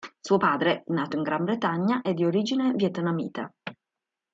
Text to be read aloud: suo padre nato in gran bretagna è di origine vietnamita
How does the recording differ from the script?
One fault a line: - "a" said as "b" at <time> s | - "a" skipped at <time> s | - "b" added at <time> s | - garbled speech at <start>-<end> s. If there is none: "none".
none